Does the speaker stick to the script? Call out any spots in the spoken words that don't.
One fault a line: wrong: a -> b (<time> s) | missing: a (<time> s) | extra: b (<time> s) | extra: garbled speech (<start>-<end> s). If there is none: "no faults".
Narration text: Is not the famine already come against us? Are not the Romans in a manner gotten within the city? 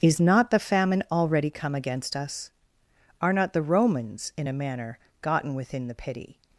wrong: city -> pity (6.0 s)